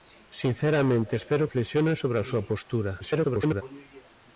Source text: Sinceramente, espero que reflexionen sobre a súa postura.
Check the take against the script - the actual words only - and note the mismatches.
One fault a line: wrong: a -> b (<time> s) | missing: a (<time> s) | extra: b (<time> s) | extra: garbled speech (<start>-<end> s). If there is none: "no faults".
missing: que (1.5 s)
extra: garbled speech (3.0-3.6 s)